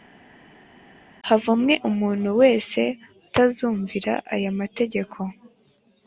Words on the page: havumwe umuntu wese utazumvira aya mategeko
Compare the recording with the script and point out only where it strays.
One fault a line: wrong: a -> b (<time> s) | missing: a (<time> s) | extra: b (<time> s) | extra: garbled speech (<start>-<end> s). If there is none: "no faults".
no faults